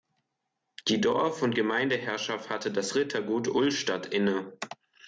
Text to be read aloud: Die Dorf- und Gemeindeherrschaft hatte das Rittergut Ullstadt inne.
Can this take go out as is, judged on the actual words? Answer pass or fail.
pass